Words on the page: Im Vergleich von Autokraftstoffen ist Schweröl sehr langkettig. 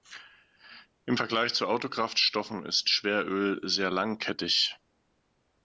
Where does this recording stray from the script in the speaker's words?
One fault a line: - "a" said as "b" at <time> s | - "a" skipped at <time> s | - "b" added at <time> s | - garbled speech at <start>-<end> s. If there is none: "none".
- "von" said as "zu" at 1.5 s